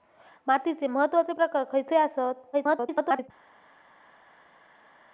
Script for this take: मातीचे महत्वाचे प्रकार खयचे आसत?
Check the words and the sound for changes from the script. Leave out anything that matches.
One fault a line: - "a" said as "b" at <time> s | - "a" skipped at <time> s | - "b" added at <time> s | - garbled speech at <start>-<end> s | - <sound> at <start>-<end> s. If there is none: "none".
- garbled speech at 2.5-3.3 s